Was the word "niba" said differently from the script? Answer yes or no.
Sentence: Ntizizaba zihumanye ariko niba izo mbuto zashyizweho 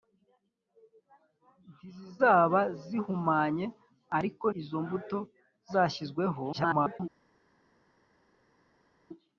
yes